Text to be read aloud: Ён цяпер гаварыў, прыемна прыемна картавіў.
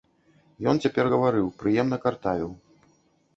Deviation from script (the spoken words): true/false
true